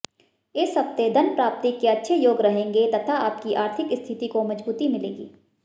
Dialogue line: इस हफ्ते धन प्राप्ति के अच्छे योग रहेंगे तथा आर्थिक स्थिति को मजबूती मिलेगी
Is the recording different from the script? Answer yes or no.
yes